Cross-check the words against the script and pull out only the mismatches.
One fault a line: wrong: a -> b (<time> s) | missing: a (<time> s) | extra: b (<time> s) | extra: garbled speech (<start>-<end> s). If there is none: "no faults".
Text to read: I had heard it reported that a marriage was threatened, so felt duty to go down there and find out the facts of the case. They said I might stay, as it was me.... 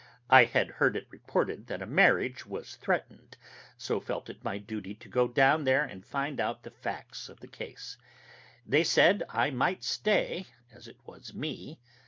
extra: it my (4.3 s)